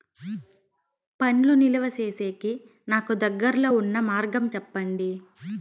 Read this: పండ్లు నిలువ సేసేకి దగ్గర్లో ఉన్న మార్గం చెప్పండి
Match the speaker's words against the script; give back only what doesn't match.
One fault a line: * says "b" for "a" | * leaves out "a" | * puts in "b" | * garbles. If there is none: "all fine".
* puts in "నాకు"